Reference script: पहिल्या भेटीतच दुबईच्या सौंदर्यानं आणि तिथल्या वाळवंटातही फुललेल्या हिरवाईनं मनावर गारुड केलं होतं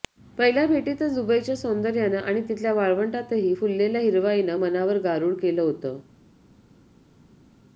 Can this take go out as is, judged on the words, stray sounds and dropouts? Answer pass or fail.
pass